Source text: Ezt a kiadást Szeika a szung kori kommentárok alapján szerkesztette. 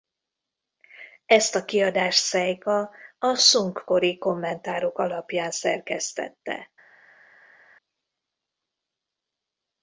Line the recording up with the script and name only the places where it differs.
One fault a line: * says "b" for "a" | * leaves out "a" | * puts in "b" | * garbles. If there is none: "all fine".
all fine